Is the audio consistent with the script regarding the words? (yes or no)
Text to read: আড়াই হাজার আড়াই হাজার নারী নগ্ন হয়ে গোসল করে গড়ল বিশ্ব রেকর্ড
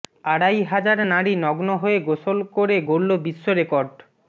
no